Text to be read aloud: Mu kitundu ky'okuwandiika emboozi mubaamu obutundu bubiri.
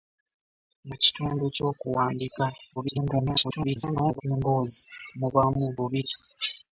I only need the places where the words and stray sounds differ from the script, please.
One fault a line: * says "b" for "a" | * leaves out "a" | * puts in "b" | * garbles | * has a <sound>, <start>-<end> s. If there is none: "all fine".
* garbles
* leaves out "obutundu"